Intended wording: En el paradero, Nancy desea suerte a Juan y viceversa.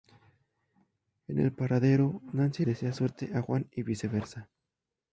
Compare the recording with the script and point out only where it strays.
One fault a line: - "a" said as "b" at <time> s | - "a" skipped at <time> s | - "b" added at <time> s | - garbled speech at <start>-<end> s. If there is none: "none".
none